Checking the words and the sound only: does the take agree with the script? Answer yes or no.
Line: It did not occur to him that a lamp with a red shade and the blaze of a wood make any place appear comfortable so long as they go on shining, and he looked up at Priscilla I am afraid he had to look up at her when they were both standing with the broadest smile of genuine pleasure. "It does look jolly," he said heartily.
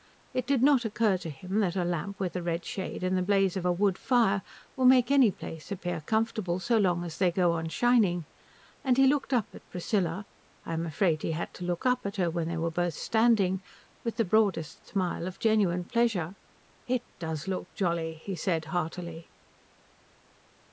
no